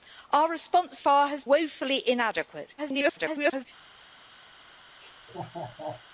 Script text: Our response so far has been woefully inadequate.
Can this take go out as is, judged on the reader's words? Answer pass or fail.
fail